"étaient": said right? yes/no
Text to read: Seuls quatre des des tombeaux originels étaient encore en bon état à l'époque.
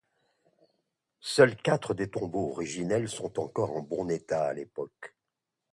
no